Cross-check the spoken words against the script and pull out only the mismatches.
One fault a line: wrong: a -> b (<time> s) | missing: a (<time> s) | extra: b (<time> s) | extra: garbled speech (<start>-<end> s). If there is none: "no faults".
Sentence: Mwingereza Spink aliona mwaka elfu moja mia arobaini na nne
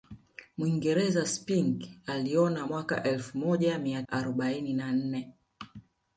no faults